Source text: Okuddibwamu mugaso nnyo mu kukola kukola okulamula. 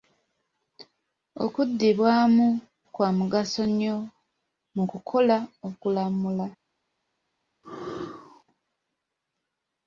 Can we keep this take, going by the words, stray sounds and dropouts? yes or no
no